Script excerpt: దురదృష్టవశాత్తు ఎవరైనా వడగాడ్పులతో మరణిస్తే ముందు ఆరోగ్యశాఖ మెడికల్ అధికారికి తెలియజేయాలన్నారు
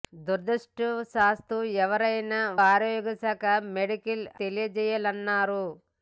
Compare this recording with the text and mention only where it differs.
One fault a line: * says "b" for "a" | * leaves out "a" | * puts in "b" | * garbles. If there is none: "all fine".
* leaves out "వడగాడ్పులతో మరణిస్తే ముందు"
* leaves out "అధికారికి"